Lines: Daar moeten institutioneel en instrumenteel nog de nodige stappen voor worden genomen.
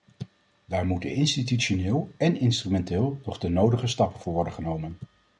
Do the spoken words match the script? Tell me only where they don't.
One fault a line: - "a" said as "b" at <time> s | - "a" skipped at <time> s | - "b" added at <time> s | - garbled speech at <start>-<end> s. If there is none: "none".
none